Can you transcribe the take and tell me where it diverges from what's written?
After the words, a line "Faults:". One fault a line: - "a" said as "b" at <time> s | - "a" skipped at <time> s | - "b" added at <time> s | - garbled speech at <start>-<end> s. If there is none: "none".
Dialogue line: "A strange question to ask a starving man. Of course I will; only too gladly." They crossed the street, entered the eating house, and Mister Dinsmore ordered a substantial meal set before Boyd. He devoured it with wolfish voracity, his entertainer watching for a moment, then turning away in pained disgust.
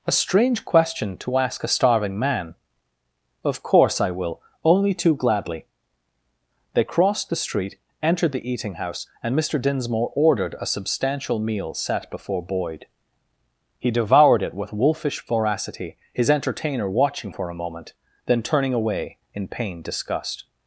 "A strange question to ask a starving man. Of course I will; only too gladly." They crossed the street, entered the eating house, and Mister Dinsmore ordered a substantial meal set before Boyd. He devoured it with wolfish voracity, his entertainer watching for a moment, then turning away in pained disgust.
Faults:
none